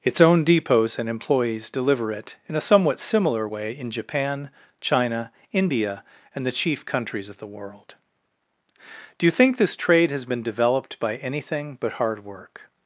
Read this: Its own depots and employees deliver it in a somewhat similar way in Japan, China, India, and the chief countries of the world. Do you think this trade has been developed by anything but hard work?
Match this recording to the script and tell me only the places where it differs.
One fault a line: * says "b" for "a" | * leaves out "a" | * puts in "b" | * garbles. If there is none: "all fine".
all fine